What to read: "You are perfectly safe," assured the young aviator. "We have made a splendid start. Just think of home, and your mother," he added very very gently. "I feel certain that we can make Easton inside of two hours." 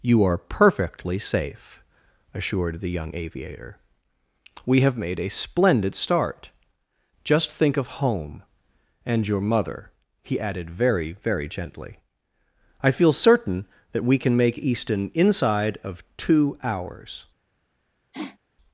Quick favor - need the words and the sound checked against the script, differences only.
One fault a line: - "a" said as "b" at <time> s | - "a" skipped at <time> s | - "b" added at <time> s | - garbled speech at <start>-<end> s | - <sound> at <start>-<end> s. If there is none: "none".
- sniff at 18.1-18.4 s